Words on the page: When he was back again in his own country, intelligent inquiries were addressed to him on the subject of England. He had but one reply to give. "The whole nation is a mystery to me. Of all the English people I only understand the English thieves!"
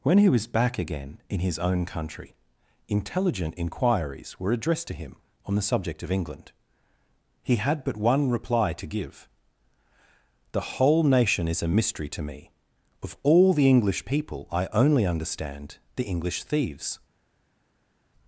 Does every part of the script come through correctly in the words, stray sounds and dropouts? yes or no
yes